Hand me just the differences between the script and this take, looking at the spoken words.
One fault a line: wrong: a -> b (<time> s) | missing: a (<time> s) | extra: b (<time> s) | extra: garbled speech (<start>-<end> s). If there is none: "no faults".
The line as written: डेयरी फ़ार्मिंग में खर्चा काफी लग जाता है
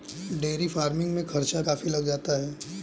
no faults